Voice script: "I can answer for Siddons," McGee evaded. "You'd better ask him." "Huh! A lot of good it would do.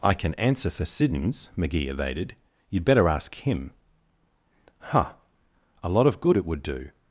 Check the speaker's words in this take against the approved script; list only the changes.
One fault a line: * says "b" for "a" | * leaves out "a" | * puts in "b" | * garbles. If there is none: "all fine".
all fine